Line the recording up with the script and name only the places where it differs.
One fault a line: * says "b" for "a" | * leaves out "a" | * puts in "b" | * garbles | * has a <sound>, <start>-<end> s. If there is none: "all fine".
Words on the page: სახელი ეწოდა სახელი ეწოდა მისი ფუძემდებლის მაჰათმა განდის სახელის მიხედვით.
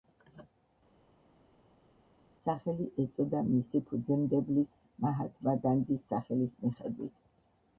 * leaves out "სახელი ეწოდა"